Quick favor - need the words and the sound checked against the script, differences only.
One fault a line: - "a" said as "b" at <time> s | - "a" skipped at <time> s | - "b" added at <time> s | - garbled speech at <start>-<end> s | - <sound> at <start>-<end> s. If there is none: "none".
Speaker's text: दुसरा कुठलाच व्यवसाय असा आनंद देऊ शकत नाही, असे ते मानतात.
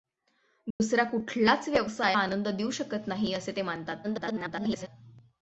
- dropout at 0.7-0.8 s
- "असा" skipped at 2.2 s
- garbled speech at 4.0-4.9 s